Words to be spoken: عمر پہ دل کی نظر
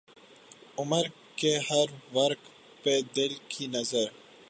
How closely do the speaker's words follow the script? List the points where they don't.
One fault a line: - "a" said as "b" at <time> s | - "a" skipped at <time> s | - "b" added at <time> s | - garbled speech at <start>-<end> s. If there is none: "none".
- "کے ہر ورق" added at 1.4 s